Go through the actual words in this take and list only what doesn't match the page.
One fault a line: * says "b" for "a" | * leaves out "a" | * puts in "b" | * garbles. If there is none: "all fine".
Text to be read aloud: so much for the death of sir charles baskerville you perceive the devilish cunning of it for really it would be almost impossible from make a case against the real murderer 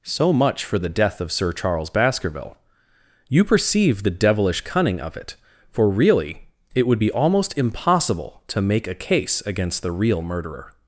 * says "to" for "from"